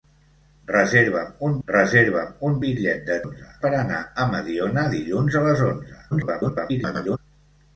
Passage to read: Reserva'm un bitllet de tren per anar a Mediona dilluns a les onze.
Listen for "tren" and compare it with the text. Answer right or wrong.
wrong